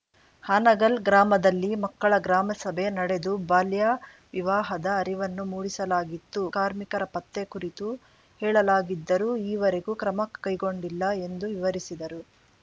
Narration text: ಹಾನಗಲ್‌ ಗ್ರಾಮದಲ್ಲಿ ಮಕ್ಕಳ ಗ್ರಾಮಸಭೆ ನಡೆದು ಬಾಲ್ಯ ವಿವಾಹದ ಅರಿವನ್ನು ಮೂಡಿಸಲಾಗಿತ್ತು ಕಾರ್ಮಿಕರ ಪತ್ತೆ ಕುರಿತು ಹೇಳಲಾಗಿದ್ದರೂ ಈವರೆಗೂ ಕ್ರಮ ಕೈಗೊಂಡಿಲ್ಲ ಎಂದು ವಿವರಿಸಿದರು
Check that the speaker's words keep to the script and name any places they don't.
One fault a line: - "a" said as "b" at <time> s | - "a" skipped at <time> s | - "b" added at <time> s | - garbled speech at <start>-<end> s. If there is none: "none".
none